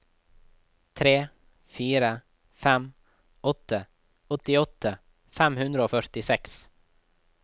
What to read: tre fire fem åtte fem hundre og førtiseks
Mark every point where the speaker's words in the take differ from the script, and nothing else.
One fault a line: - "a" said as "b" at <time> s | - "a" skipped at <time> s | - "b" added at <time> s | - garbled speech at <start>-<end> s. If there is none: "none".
- "åttiåtte" added at 4.4 s